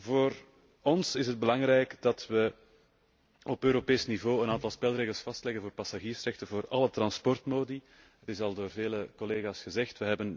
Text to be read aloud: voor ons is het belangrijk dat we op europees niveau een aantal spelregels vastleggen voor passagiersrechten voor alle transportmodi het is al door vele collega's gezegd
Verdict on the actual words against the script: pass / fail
pass